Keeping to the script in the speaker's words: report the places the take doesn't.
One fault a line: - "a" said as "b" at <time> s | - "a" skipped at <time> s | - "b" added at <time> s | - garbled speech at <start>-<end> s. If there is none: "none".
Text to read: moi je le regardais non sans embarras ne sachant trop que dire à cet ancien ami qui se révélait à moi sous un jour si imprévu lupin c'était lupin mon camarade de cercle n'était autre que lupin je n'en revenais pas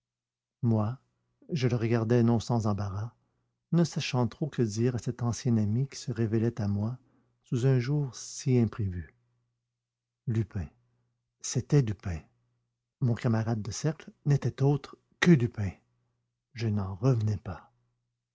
none